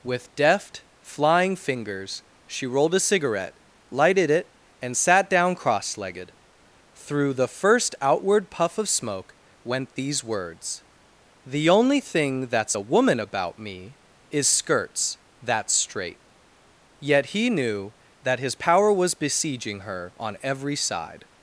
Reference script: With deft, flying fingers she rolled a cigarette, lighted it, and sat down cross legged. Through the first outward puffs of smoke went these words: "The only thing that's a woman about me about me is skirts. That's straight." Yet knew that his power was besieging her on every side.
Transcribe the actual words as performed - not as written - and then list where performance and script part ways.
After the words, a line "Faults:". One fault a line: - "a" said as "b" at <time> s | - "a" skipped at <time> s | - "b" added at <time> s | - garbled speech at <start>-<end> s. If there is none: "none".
With deft, flying fingers she rolled a cigarette, lighted it, and sat down cross legged. Through the first outward puff of smoke went these words: "The only thing that's a woman about me is skirts. That's straight." Yet he knew that his power was besieging her on every side.
Faults:
- "puffs" said as "puff" at 8.5 s
- "about me" skipped at 14.0 s
- "he" added at 17.3 s